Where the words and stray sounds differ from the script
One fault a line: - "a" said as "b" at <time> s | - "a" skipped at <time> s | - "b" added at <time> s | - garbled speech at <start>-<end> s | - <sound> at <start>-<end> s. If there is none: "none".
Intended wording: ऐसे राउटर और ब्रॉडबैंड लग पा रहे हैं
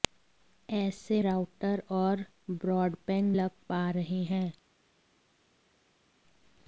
none